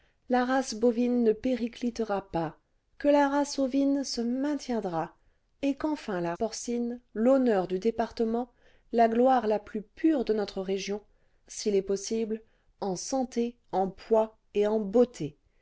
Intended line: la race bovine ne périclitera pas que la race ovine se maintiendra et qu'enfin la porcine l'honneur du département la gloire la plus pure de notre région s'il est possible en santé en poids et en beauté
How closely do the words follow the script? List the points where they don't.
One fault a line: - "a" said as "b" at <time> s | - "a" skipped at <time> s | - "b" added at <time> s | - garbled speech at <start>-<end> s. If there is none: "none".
none